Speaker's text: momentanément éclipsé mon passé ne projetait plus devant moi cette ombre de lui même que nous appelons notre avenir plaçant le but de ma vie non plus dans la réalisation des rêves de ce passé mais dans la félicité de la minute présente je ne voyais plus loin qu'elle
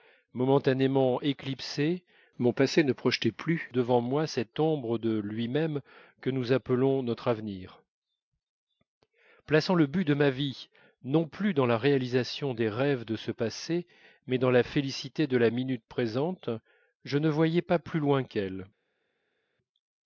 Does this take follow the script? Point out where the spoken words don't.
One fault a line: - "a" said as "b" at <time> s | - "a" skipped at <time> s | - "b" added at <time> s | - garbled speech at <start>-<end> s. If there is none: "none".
- "pas" added at 17.6 s